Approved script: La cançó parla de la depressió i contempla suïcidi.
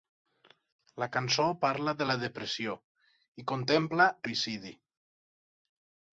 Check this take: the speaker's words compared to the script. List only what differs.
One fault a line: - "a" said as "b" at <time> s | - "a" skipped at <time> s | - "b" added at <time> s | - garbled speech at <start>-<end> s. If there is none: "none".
none